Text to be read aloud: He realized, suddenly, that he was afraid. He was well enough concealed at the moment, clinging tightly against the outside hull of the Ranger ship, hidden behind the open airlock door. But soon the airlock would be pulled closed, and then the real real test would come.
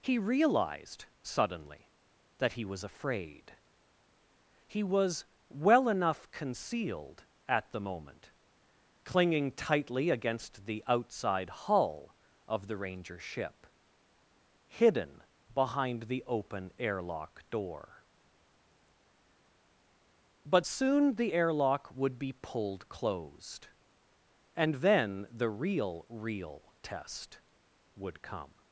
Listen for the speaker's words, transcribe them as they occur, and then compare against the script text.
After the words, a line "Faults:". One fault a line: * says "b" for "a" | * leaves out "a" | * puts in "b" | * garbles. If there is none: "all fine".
He realized, suddenly, that he was afraid. He was well enough concealed at the moment, clinging tightly against the outside hull of the Ranger ship, hidden behind the open airlock door. But soon the airlock would be pulled closed, and then the real real test would come.
Faults:
all fine